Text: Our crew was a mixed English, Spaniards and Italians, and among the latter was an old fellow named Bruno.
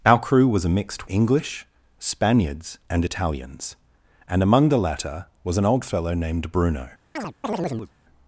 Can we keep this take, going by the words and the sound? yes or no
no